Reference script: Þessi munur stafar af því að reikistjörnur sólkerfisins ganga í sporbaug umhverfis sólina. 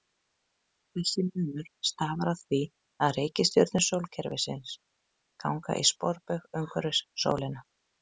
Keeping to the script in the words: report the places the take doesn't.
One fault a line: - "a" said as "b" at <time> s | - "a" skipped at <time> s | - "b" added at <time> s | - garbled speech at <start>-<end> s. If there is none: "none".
none